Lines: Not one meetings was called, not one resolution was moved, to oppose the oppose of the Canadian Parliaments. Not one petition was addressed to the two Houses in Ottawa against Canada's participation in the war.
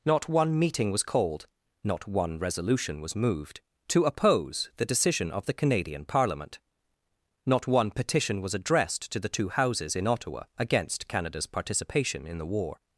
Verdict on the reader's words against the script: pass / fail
fail